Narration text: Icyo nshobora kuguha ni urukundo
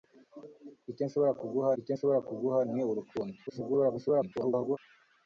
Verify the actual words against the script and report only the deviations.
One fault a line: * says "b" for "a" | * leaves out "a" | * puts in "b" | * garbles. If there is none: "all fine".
* puts in "icyo nshobora kuguha"
* garbles